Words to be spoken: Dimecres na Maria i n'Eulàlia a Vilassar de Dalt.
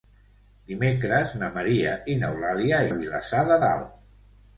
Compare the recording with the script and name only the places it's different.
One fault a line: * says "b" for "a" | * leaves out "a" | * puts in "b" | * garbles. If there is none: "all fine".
all fine